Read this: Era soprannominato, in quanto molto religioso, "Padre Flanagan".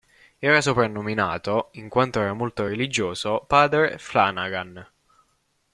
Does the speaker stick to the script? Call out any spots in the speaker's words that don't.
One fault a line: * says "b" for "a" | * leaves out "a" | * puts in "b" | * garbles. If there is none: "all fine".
* puts in "era"